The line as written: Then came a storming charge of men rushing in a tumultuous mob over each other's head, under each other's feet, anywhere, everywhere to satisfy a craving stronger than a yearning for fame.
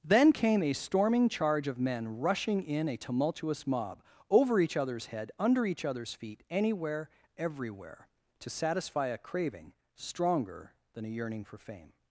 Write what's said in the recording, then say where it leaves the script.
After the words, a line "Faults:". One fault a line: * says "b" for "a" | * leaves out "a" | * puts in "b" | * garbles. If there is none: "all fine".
Then came a storming charge of men rushing in a tumultuous mob over each other's head, under each other's feet, anywhere, everywhere to satisfy a craving stronger than a yearning for fame.
Faults:
all fine